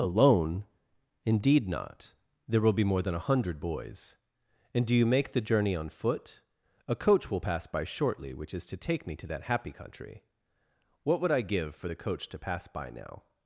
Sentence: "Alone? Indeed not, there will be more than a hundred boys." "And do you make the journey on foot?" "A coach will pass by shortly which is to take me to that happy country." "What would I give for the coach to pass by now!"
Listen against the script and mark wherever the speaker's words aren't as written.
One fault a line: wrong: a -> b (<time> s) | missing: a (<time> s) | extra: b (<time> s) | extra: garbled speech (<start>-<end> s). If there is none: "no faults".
no faults